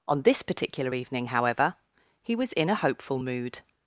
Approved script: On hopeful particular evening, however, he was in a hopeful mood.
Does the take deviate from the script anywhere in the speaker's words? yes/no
yes